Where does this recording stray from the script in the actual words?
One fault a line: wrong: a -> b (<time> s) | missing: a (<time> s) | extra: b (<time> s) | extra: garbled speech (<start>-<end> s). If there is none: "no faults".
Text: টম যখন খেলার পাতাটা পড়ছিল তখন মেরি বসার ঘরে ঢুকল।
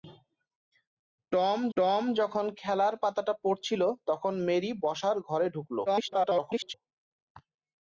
extra: টম (1.8 s)
extra: garbled speech (5.9-6.7 s)